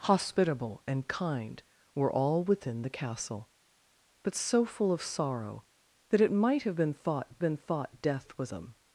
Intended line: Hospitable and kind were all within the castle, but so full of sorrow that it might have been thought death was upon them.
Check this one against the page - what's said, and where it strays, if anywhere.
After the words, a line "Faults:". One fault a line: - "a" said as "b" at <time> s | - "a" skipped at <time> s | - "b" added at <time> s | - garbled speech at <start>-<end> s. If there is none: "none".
Hospitable and kind were all within the castle, but so full of sorrow that it might have been thought been thought death was them.
Faults:
- "been thought" added at 7.4 s
- "upon" skipped at 8.5 s